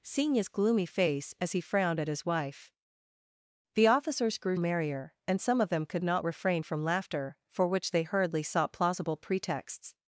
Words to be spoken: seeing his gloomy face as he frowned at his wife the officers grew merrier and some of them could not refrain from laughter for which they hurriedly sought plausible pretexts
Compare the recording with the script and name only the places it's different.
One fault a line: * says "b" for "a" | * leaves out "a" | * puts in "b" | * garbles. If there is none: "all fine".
all fine